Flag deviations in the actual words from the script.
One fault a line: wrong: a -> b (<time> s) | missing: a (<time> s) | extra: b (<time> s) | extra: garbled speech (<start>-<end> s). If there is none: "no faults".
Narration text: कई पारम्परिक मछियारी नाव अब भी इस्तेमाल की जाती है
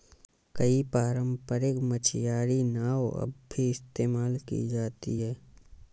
no faults